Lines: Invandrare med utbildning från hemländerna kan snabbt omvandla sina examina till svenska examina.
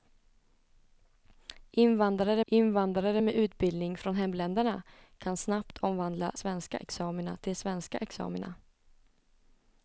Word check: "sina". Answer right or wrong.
wrong